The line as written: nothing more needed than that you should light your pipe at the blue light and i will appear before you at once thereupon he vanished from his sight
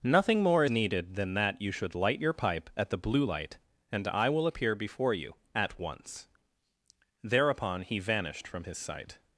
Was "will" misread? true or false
false